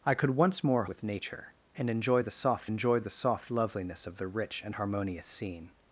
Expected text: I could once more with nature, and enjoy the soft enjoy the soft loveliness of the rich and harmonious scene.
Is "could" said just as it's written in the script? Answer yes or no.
yes